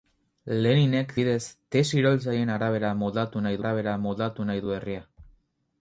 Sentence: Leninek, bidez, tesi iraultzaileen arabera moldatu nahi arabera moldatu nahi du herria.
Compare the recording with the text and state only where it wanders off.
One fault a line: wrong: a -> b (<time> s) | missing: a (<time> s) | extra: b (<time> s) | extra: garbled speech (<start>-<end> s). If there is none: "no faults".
no faults